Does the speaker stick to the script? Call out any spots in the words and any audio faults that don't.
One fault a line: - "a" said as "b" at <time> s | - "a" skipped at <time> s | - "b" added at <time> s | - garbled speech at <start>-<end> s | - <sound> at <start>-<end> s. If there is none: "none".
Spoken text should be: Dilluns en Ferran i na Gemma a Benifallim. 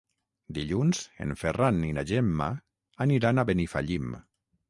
- "aniran" added at 3.1 s